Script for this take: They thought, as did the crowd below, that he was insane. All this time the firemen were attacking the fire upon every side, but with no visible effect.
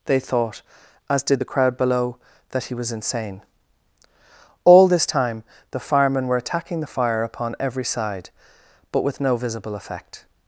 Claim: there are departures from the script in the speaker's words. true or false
false